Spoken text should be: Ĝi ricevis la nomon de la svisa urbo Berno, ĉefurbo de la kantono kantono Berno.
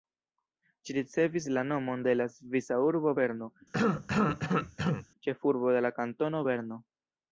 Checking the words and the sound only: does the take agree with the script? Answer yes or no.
no